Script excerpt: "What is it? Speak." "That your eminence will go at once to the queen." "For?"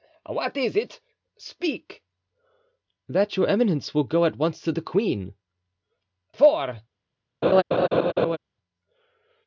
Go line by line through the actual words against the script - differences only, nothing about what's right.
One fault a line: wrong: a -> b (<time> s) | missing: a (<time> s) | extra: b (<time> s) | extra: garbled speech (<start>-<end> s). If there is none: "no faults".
no faults